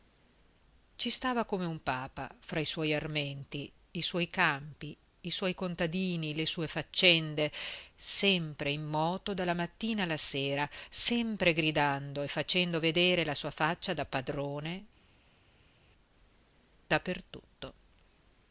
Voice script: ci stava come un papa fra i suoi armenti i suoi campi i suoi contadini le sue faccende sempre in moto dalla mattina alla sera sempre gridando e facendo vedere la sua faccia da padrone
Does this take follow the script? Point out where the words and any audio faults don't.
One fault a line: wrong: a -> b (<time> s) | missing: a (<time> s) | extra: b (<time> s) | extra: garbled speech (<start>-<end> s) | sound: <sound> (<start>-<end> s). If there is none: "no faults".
no faults